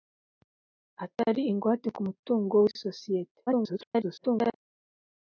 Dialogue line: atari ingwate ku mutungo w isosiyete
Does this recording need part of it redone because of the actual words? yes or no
yes